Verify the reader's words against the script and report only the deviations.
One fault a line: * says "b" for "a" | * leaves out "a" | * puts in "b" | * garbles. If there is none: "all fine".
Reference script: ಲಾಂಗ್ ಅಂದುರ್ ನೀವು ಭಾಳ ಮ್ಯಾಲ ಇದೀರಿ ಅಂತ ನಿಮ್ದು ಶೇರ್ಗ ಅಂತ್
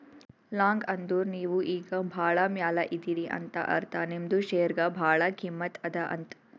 * puts in "ಈಗ"
* puts in "ಅರ್ಥ"
* puts in "ಭಾಳ ಕಿಮ್ಮತ್ ಅದಾ"